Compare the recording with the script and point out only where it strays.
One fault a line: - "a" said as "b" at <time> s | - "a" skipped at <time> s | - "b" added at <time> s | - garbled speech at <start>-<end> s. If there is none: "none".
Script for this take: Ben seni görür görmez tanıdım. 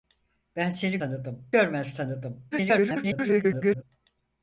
- "görür" said as "tanıdım" at 1.0 s
- garbled speech at 2.5-3.8 s